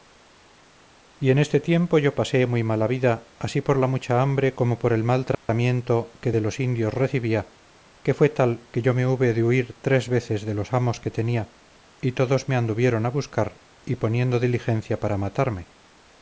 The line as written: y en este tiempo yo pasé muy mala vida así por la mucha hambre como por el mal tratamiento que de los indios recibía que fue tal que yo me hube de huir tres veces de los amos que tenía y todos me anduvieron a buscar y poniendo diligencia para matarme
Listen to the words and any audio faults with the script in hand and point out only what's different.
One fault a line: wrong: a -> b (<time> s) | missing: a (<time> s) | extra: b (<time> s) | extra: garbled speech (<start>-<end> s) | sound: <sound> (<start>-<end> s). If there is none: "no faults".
sound: dropout (5.3-5.5 s)